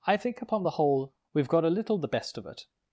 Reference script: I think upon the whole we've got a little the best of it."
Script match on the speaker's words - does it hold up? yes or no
yes